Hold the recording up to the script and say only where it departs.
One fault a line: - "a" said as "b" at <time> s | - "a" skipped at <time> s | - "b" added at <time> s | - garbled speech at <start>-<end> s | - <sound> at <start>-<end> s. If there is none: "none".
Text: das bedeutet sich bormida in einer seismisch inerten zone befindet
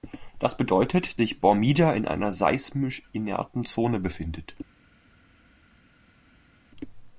none